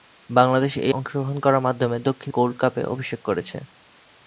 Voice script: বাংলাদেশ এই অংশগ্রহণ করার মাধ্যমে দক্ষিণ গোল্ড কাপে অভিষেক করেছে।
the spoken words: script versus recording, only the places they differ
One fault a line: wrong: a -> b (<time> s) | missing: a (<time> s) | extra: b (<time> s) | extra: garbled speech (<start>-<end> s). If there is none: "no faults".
no faults